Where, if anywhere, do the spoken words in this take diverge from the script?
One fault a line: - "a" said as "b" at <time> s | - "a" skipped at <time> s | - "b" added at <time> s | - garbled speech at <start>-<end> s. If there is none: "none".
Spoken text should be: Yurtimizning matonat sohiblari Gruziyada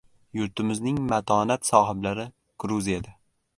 none